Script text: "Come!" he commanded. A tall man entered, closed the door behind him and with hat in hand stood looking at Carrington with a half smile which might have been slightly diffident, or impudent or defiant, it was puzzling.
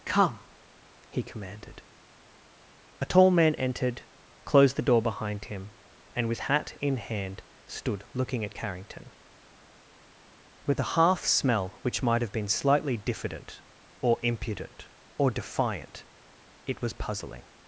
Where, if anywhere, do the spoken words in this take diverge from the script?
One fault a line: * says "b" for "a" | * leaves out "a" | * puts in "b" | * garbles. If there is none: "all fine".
* says "smell" for "smile"